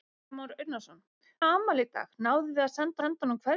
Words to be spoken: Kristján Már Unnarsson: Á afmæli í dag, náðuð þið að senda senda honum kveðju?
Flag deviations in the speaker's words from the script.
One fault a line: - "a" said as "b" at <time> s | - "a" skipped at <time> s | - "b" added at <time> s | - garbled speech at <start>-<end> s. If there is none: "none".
none